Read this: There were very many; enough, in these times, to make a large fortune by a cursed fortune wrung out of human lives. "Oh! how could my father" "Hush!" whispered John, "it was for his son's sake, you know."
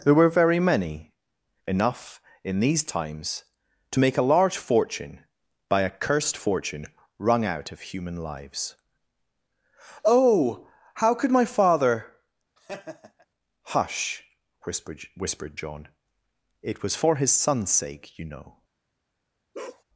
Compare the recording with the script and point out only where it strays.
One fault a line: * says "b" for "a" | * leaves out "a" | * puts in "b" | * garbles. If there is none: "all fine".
* puts in "whispered"